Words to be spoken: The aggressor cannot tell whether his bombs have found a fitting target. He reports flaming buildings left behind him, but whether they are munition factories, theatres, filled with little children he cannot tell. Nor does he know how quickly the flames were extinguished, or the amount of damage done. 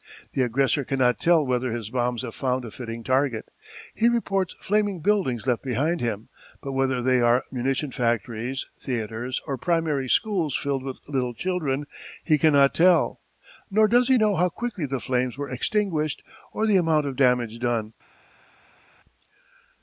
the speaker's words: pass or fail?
fail